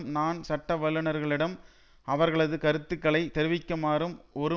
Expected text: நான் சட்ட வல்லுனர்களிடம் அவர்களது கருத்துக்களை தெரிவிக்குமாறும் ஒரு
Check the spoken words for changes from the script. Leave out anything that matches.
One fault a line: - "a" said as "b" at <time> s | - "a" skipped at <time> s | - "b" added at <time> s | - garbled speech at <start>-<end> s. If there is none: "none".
none